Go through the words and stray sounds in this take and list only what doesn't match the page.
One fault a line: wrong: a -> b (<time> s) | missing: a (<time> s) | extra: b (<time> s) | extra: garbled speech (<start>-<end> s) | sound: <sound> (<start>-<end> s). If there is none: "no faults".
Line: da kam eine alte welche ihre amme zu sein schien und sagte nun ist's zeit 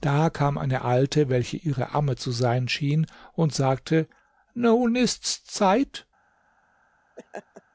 sound: laugh (7.2-7.6 s)